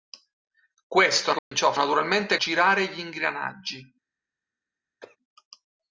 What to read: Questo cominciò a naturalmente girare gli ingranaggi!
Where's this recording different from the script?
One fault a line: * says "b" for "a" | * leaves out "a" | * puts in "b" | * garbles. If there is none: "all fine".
all fine